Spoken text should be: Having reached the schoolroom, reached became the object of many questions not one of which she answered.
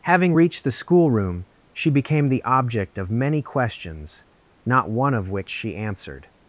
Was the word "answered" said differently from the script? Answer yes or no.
no